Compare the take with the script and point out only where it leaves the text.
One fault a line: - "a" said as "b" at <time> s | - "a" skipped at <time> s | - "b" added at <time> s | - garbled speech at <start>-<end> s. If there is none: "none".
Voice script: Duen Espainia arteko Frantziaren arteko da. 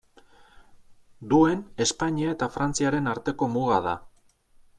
- "arteko" said as "eta" at 2.4 s
- "muga" added at 3.6 s